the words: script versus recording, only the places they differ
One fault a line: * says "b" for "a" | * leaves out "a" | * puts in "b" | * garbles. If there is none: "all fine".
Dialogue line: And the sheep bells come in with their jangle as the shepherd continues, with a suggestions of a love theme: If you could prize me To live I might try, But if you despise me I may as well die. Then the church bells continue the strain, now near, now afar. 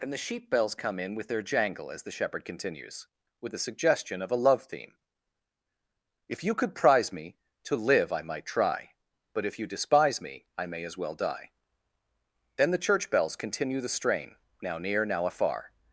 * says "suggestion" for "suggestions"